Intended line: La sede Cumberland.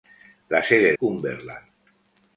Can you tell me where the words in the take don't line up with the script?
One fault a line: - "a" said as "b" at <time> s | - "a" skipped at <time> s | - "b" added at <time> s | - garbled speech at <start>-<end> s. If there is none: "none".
none